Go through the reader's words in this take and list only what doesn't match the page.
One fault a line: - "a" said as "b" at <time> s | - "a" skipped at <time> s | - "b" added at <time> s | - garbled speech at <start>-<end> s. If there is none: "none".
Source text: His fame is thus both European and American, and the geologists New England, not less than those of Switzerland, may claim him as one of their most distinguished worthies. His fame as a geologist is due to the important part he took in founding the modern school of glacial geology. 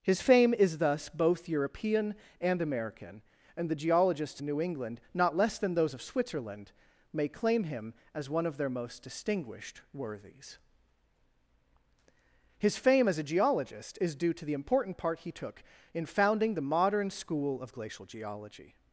none